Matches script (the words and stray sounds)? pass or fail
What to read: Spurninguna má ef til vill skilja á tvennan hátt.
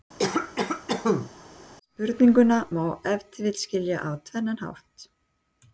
fail